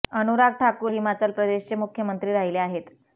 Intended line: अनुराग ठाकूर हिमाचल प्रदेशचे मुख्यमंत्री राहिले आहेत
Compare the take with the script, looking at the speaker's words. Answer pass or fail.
pass